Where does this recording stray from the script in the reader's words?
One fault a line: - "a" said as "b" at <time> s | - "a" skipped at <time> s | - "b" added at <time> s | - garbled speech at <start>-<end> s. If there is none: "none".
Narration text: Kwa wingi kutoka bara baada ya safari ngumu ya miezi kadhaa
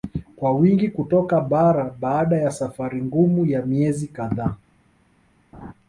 none